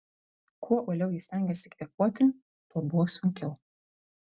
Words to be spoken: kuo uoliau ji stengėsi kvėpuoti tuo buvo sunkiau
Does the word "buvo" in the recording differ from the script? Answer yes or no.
no